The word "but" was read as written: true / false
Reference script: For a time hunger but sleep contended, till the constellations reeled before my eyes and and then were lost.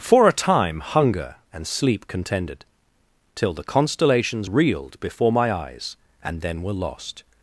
false